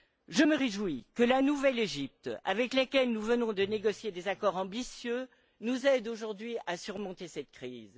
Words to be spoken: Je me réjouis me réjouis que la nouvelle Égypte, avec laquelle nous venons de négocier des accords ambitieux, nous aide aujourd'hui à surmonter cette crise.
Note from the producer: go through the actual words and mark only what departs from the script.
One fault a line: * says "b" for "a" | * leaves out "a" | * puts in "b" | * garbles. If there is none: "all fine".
* leaves out "me réjouis"